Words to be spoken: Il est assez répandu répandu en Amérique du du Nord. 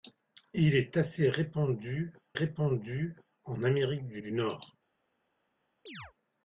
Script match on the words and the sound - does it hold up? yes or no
no